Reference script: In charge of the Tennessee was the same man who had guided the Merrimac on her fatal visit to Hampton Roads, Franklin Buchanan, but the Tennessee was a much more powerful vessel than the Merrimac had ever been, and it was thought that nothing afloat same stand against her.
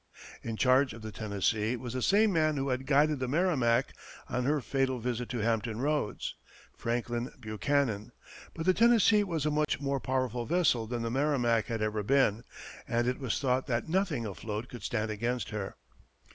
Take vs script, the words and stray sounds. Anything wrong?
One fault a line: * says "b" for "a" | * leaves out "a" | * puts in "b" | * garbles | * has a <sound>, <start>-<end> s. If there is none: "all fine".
* has a dropout, 9.6-9.7 s
* says "could" for "same"